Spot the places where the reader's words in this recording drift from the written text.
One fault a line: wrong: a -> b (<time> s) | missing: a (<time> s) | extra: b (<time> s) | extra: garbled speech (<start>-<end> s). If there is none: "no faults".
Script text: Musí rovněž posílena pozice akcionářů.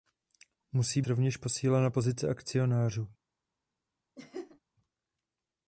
no faults